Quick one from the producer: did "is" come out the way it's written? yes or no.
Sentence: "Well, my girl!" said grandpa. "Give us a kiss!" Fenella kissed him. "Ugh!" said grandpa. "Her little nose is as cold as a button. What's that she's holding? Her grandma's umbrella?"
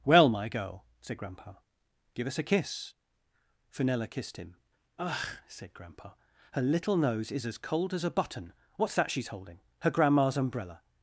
yes